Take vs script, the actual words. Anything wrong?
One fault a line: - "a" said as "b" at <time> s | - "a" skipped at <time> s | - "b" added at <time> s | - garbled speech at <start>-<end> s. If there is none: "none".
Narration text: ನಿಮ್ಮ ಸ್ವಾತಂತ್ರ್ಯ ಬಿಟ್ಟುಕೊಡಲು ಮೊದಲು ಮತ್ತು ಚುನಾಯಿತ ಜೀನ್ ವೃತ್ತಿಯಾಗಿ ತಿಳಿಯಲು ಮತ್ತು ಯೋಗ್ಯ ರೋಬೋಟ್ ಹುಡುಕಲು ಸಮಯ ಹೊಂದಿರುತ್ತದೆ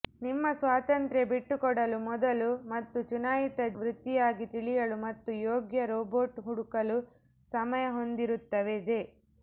- "ಜೀನ್" skipped at 3.7 s